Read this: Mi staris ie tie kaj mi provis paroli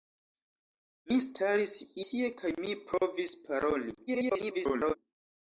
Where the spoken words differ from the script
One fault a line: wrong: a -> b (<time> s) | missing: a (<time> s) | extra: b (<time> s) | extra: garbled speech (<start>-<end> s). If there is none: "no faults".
missing: ie (1.7 s)
extra: garbled speech (4.1-5.0 s)